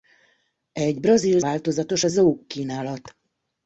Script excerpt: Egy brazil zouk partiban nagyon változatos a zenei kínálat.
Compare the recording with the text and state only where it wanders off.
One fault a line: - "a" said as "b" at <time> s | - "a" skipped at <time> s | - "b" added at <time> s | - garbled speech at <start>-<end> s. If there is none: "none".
- "zouk partiban nagyon" skipped at 1.4 s
- "zenei" said as "zouk" at 2.1 s